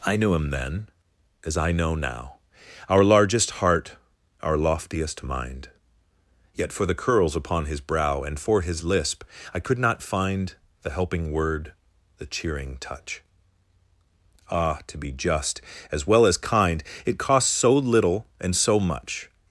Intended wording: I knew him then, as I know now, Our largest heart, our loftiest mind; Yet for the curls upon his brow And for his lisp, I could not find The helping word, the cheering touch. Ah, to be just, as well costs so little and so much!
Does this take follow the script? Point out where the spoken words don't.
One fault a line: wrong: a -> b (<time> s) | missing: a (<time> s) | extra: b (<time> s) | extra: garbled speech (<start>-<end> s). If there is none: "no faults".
extra: as kind It (16.2 s)